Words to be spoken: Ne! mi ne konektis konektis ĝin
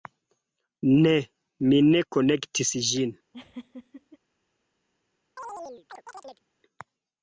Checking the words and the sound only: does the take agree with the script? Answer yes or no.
no